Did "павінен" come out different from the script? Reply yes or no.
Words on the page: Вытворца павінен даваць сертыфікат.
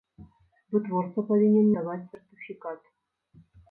no